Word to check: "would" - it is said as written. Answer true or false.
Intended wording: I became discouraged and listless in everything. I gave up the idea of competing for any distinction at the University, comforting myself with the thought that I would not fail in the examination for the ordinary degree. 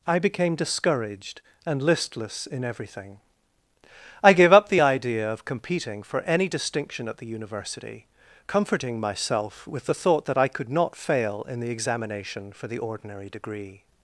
false